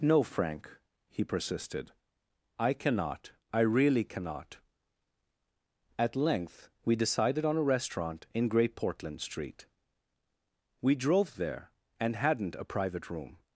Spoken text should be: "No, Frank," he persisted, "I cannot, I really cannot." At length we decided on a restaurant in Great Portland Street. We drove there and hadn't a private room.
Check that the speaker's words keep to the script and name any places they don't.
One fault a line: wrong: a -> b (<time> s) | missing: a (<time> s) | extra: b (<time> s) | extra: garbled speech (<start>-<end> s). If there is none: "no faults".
no faults